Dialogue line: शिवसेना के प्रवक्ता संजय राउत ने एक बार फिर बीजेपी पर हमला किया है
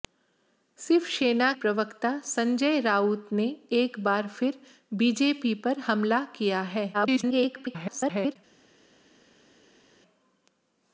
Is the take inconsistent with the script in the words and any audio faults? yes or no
yes